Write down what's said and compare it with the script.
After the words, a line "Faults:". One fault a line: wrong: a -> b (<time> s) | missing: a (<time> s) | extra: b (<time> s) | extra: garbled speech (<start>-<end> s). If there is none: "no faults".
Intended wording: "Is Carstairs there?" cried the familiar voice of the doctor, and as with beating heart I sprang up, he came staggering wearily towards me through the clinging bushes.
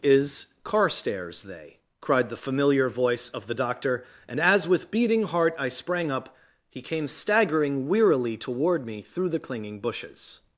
"Is Carstairs they?" cried the familiar voice of the doctor, and as with beating heart I sprang up, he came staggering wearily toward me through the clinging bushes.
Faults:
wrong: there -> they (1.4 s)
wrong: towards -> toward (8.4 s)